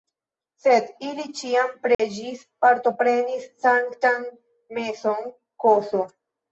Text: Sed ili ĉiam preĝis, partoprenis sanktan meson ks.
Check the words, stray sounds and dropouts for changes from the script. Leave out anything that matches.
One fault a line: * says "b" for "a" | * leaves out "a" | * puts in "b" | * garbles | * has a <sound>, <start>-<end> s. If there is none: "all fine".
* has a dropout, 1.9-2.0 s